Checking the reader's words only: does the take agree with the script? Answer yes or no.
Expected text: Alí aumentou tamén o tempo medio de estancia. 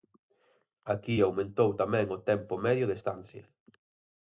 no